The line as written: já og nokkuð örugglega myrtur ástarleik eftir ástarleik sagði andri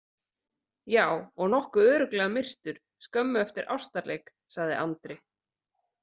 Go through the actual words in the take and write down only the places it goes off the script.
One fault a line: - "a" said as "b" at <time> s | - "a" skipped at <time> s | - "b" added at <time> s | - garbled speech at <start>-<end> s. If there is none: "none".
- "ástarleik" said as "skömmu" at 3.1 s